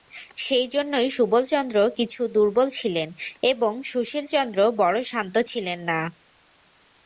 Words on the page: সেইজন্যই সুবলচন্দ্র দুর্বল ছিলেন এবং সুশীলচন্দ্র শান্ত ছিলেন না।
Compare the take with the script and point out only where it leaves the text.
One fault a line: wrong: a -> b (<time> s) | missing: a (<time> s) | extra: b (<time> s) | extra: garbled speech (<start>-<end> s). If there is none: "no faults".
extra: কিছু (2.0 s)
extra: বড়ো (4.8 s)